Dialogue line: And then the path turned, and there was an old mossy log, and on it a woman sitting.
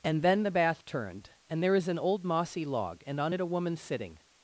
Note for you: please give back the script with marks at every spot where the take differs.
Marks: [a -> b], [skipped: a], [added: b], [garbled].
And then the [path -> bath] turned, and there [was -> is] an old mossy log, and on it a woman sitting.